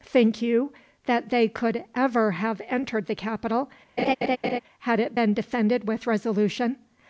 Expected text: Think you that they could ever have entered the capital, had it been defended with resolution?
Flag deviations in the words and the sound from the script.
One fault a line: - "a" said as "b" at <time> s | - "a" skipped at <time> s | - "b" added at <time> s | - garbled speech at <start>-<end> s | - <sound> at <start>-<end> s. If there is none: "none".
- laugh at 4.0-4.6 s